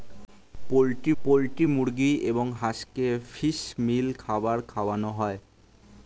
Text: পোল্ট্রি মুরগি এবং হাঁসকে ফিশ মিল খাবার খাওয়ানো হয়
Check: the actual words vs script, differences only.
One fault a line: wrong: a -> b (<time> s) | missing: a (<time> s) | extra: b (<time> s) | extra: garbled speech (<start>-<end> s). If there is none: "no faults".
extra: পোল্ট্রি (1.2 s)